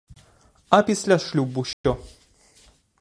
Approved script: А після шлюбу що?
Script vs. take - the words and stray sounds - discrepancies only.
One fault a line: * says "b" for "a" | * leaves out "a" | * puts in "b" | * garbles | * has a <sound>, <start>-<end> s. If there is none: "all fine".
* has a dropout, 1.7-1.8 s